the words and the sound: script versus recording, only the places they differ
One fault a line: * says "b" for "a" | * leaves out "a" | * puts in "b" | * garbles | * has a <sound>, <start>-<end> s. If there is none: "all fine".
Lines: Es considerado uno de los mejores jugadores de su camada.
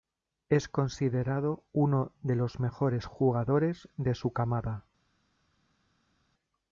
all fine